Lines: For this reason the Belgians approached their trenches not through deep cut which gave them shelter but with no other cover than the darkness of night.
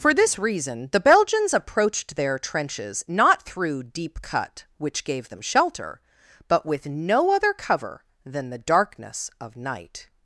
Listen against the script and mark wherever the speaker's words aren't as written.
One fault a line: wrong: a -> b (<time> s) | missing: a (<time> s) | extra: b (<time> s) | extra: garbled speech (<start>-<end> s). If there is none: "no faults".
no faults